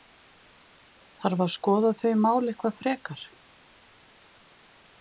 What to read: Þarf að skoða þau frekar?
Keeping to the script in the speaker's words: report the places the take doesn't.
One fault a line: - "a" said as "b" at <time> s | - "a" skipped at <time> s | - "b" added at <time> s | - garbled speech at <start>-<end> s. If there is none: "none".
- "mál eitthvað" added at 2.3 s